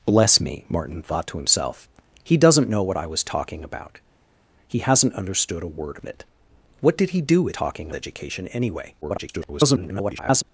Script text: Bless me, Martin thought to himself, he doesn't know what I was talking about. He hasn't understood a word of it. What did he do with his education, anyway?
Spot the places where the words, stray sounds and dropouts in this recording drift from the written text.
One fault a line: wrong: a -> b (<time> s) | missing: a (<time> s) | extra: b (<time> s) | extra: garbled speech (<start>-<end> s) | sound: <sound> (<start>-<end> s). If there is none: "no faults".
wrong: his -> talking (7.5 s)
extra: garbled speech (9.0-10.4 s)